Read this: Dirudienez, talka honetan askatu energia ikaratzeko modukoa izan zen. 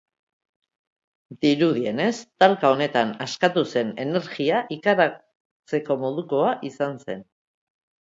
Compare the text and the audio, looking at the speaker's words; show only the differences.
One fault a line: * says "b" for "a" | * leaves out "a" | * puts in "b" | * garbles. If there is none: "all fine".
* puts in "zen"